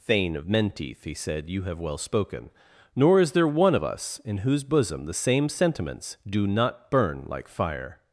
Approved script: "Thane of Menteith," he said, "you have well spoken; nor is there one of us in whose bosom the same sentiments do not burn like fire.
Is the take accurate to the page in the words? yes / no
yes